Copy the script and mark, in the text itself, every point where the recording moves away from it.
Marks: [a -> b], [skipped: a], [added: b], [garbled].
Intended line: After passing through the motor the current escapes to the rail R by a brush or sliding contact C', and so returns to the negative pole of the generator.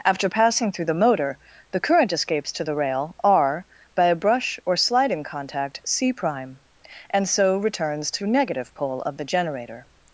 After passing through the motor the current escapes to the rail R by a brush or sliding contact C', and so returns to [skipped: the] negative pole of the generator.